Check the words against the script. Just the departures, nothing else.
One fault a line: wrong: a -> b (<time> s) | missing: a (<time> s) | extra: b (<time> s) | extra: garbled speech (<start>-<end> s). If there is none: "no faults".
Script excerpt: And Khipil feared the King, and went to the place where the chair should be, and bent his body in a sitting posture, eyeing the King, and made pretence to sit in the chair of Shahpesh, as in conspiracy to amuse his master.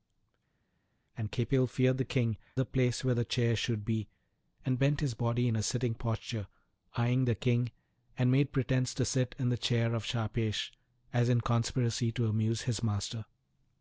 missing: and went to (2.4 s)